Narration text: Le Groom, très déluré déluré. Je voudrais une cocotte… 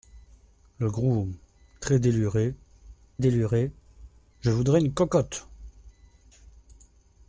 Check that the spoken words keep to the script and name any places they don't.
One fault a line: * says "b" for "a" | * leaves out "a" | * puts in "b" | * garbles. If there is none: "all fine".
all fine